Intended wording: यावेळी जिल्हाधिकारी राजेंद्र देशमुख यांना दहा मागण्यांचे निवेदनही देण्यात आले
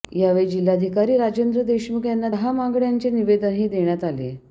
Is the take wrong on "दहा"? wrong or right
right